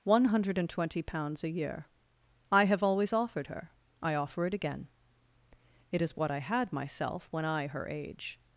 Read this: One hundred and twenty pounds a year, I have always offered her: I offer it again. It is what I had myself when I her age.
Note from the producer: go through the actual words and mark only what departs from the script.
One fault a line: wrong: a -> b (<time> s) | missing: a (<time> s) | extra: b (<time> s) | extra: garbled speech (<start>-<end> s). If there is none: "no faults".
no faults